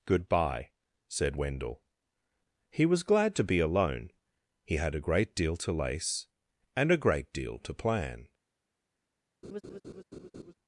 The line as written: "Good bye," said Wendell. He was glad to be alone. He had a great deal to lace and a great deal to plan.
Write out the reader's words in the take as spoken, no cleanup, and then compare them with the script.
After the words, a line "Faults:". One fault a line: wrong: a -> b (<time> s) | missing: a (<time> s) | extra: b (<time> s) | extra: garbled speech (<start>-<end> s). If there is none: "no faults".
"Good bye," said Wendell. He was glad to be alone. He had a great deal to lace and a great deal to plan.
Faults:
no faults